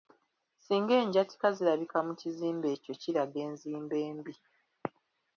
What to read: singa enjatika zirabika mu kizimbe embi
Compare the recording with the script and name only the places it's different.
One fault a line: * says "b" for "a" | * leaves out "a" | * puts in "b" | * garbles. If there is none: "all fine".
* puts in "ekyo kiraga enzimba"